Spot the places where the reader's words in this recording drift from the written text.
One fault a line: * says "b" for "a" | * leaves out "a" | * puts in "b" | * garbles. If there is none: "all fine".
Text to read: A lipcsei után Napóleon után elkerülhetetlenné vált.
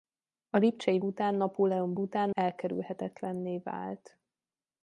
all fine